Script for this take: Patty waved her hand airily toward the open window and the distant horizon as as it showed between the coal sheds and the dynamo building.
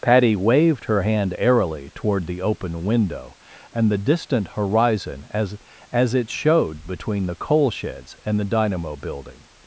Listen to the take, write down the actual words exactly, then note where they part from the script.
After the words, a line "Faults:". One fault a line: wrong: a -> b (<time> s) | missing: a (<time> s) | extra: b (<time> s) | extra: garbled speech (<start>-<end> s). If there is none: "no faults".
Patty waved her hand airily toward the open window and the distant horizon as as it showed between the coal sheds and the dynamo building.
Faults:
no faults